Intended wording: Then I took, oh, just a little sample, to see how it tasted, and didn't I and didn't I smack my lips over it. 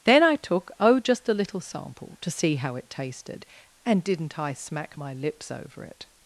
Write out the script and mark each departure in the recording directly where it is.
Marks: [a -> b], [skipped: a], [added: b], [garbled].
Then I took, oh, just a little sample, to see how it tasted, and didn't I [skipped: and didn't I] smack my lips over it.